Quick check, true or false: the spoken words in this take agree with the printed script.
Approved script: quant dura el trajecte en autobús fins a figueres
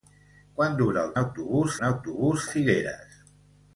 false